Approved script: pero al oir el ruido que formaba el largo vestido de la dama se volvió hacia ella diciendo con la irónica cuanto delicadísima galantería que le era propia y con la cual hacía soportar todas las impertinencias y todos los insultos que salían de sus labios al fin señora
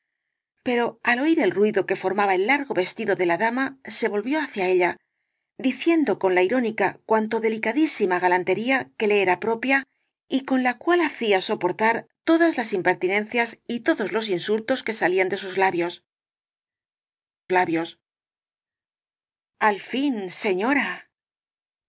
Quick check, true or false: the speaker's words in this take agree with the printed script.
false